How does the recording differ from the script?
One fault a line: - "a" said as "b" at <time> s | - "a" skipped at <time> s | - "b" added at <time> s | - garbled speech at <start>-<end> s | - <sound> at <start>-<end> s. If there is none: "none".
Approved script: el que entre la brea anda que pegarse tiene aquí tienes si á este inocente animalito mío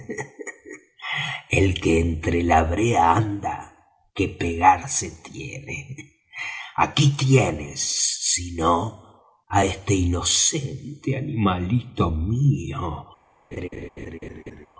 - "no" added at 8.5 s
- laugh at 13.5-14.7 s